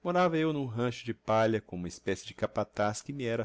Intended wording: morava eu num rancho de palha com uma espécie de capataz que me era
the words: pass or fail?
pass